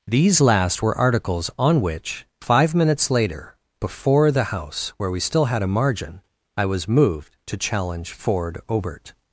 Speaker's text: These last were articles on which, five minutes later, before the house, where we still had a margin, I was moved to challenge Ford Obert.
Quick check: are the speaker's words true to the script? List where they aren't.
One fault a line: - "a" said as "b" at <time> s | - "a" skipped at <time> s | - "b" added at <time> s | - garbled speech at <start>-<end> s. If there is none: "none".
none